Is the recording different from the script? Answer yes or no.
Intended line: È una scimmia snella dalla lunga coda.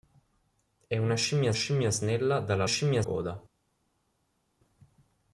yes